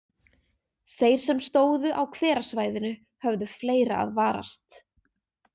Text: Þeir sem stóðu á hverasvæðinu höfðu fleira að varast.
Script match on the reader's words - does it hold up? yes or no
yes